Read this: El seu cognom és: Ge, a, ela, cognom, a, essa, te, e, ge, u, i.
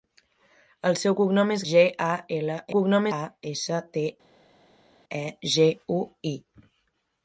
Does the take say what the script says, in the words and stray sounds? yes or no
yes